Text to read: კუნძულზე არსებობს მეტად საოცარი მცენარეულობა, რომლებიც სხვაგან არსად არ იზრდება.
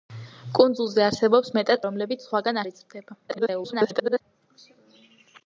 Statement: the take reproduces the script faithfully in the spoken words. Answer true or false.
false